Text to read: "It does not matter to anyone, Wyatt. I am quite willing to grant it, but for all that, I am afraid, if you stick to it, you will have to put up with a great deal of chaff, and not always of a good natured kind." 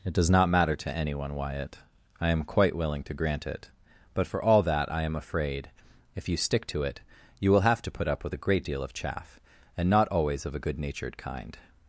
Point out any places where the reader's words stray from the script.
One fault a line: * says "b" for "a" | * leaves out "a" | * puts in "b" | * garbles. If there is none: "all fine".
all fine